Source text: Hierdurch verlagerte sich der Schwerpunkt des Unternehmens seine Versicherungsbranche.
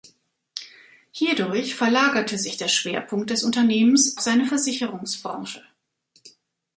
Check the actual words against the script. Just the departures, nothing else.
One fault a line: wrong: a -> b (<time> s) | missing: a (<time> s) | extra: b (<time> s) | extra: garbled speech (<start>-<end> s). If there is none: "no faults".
no faults